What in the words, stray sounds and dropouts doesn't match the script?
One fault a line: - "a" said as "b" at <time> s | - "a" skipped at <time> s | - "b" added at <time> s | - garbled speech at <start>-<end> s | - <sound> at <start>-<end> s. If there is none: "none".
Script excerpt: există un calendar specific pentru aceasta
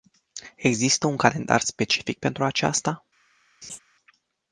- laugh at 3.6-3.8 s